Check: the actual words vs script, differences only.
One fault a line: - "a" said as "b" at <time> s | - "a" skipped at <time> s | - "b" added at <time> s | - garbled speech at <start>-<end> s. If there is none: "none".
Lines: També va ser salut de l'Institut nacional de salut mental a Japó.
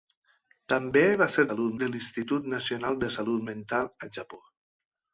none